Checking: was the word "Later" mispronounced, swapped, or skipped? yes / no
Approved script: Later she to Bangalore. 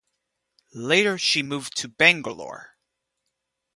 no